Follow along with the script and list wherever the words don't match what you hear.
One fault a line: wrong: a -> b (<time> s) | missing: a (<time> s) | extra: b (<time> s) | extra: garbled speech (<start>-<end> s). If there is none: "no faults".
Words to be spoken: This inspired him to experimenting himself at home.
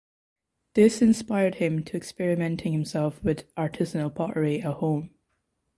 extra: with artisanal pottery (3.2 s)